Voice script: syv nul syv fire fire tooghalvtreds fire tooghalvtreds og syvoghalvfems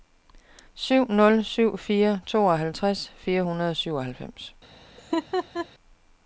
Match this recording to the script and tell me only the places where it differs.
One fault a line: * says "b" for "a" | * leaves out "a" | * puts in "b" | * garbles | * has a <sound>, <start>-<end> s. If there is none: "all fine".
* leaves out "fire"
* says "hundrede" for "tooghalvtreds"
* has a laugh, 5.0-5.7 s